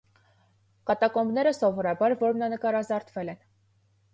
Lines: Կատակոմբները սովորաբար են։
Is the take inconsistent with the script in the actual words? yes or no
yes